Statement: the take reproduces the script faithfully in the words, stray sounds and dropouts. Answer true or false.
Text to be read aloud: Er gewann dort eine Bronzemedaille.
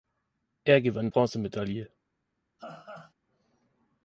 false